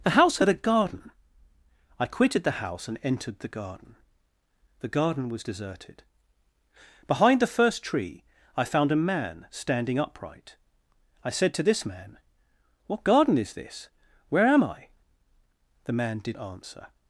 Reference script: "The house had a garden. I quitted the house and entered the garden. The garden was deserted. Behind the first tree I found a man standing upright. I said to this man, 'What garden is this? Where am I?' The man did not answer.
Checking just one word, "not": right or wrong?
wrong